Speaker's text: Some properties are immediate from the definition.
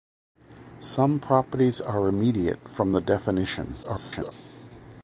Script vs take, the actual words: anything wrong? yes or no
yes